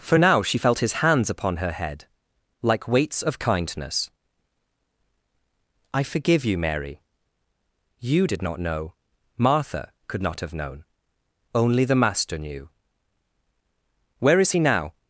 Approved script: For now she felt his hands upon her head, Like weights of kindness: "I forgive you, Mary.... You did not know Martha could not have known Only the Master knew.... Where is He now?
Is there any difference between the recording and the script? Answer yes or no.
no